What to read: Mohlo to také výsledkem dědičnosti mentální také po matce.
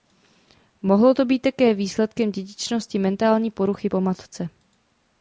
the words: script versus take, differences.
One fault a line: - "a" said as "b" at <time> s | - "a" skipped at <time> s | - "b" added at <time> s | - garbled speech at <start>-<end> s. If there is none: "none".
- "být" added at 1.3 s
- "také" said as "poruchy" at 3.5 s